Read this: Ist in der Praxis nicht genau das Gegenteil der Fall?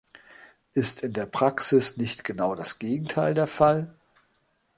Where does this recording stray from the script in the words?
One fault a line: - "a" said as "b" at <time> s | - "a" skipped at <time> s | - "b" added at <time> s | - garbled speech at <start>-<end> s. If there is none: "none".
none